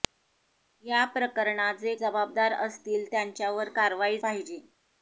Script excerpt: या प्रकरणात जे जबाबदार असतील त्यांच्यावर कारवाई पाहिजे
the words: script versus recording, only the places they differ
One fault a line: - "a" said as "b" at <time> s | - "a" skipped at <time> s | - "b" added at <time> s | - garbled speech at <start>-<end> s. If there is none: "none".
none